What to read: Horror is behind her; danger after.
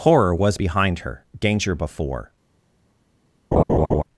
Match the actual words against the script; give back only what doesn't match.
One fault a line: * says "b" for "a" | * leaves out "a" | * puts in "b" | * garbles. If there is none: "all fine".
* says "was" for "is"
* says "before" for "after"